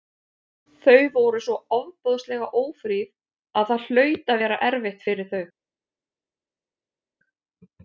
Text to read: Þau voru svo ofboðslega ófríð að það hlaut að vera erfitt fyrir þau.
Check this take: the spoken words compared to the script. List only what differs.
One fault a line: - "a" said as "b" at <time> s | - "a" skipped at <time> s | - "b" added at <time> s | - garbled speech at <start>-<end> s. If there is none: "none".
none